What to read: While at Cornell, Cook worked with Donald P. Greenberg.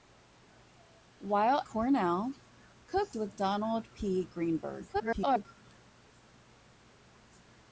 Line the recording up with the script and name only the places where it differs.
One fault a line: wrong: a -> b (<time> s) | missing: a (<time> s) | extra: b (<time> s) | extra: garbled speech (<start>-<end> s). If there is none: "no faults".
missing: at (1.6 s)
missing: worked (3.1 s)
extra: garbled speech (4.9-5.5 s)